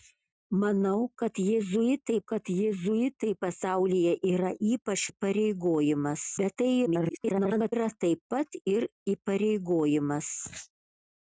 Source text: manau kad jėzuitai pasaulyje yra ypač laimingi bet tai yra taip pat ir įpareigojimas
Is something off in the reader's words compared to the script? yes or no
yes